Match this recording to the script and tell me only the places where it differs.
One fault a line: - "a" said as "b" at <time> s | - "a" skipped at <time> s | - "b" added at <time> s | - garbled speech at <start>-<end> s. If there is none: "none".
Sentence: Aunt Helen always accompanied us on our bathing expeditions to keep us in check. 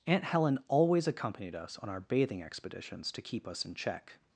none